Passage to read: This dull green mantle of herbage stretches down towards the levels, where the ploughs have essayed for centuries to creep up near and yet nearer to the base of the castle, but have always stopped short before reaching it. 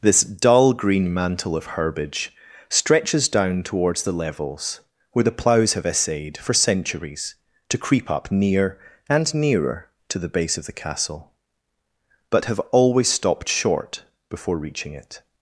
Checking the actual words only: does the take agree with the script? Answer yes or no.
no